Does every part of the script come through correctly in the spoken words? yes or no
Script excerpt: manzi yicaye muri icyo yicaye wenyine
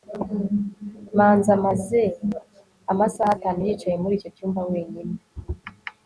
no